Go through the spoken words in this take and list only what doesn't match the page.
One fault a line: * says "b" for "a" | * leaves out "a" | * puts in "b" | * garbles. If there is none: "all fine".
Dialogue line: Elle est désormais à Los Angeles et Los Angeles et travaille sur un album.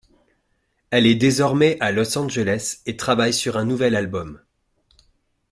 * leaves out "Los Angeles et"
* puts in "nouvel"